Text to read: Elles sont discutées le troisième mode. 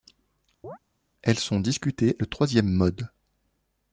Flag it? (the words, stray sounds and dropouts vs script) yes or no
yes